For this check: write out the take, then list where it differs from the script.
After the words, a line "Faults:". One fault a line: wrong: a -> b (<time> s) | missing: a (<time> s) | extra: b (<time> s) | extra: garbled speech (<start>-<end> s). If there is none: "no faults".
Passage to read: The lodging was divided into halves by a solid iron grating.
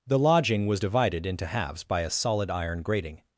The lodging was divided into halves by a solid iron grating.
Faults:
no faults